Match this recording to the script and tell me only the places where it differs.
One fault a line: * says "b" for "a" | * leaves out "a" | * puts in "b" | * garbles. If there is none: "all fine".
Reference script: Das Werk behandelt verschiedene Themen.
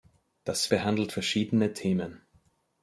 * leaves out "Werk"